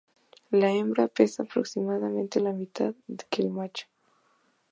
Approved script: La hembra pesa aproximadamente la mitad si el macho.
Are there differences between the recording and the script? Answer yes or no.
yes